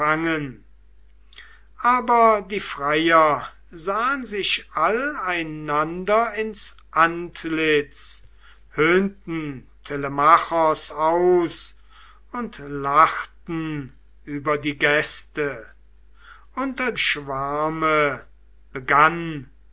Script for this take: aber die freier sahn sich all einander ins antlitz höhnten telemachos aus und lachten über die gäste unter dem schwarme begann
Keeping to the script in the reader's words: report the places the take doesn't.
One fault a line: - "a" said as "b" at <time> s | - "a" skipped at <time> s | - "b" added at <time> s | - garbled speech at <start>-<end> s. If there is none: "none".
- "dem" skipped at 16.9 s